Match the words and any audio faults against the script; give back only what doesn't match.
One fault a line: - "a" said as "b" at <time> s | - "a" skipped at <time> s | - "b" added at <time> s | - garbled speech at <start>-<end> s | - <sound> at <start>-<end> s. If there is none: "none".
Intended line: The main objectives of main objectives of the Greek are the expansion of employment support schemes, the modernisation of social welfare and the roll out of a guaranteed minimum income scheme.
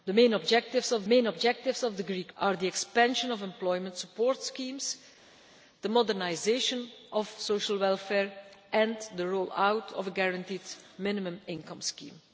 none